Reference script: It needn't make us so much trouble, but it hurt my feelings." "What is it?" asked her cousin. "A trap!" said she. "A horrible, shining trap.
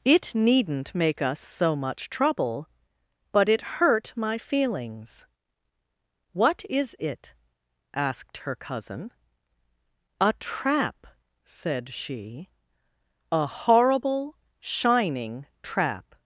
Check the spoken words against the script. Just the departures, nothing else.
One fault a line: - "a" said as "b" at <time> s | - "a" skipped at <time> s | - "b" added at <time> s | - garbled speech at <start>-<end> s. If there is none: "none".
none